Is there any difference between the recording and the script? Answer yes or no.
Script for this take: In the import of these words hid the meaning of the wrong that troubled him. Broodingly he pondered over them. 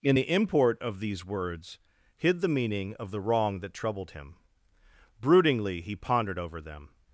no